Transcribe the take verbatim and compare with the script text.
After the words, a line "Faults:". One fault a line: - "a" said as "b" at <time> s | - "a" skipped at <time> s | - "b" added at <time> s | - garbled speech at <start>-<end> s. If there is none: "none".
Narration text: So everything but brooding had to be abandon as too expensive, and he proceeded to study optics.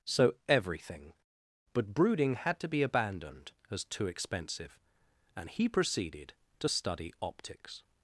So everything but brooding had to be abandoned as too expensive, and he proceeded to study optics.
Faults:
- "abandon" said as "abandoned" at 2.8 s